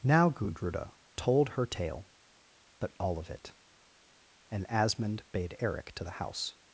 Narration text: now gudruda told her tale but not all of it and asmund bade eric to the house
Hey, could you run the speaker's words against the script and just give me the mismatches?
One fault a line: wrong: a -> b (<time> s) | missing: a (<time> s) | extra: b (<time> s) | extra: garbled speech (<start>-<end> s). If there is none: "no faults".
missing: not (2.9 s)